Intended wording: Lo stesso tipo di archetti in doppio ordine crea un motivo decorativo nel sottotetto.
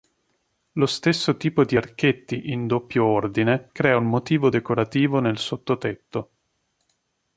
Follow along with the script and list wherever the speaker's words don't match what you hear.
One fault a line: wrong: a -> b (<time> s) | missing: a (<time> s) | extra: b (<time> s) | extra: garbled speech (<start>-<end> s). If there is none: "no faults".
no faults